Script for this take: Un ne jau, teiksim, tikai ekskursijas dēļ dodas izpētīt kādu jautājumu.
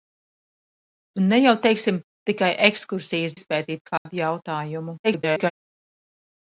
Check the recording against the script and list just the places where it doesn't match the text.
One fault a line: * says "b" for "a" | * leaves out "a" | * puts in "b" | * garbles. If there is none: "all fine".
* leaves out "dēļ dodas"
* garbles